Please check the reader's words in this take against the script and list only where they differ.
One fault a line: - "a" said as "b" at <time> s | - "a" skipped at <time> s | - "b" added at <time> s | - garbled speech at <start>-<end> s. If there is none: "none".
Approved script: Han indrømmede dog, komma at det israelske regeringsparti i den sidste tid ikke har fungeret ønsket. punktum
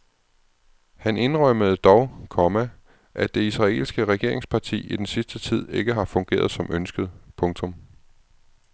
- "som" added at 6.5 s